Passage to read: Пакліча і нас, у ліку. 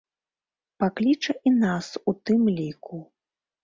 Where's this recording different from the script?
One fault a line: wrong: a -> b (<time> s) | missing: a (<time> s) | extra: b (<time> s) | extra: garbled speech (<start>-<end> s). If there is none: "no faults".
extra: тым (2.2 s)